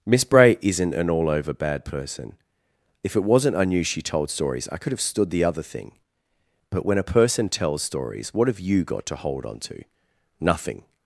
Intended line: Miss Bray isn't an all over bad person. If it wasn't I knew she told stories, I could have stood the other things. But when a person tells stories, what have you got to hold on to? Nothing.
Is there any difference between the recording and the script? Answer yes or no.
yes